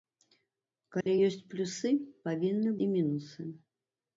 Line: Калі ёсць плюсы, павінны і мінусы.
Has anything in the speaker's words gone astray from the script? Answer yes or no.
no